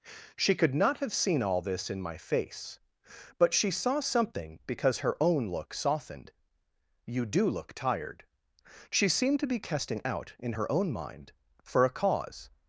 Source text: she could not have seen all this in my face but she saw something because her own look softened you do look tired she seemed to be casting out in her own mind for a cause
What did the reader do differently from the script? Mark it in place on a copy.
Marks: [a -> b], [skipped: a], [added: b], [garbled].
she could not have seen all this in my face but she saw something because her own look softened you do look tired she seemed to be casting out in her own mind for a cause